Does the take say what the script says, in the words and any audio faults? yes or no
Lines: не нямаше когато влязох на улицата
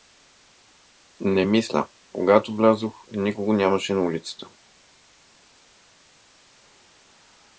no